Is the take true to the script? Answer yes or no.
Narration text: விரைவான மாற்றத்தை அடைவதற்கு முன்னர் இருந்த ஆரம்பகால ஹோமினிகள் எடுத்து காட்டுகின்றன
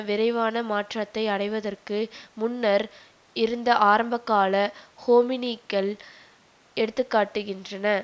yes